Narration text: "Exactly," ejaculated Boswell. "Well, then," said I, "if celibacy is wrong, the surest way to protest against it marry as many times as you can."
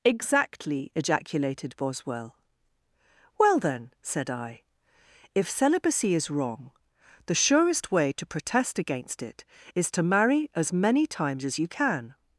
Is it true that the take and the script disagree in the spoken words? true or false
true